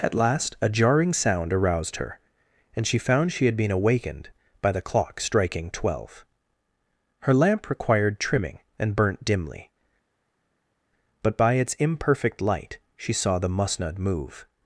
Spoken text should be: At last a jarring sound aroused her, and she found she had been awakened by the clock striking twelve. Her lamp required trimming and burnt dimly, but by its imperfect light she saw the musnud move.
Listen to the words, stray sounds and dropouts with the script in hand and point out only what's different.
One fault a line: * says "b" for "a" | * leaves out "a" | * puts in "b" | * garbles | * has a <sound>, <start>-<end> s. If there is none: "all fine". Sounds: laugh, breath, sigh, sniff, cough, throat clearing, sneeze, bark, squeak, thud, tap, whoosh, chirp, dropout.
all fine